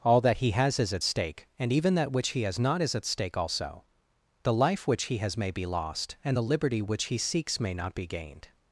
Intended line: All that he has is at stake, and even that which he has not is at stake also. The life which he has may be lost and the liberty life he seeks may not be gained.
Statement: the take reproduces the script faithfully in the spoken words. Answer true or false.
false